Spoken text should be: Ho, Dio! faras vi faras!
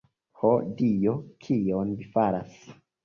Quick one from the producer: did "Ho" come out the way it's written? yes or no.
yes